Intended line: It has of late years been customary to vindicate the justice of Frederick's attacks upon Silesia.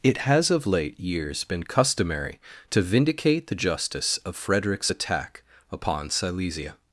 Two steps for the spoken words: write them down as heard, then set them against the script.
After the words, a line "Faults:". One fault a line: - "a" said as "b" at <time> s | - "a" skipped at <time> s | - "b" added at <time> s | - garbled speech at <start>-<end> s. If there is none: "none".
It has of late years been customary to vindicate the justice of Frederick's attack upon Silesia.
Faults:
- "attacks" said as "attack" at 4.9 s